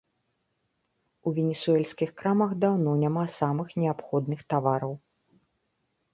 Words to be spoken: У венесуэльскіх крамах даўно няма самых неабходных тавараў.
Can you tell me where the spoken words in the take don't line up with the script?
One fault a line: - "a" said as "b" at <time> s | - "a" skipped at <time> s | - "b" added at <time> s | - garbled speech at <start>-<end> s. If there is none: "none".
none